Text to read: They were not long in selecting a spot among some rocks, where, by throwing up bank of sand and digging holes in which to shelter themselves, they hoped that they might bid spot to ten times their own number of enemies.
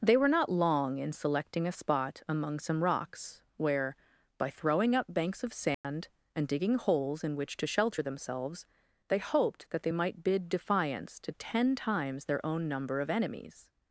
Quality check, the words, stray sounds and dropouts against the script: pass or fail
fail